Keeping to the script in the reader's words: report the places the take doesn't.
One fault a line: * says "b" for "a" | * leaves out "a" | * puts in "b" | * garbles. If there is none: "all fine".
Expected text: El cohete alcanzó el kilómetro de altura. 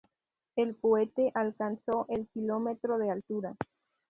all fine